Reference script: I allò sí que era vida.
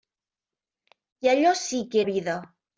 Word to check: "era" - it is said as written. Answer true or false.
false